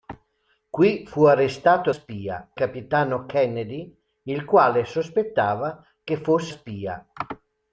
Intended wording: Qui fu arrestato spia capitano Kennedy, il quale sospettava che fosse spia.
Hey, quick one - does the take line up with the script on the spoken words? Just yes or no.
yes